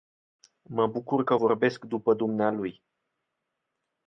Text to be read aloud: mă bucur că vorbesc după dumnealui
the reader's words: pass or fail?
pass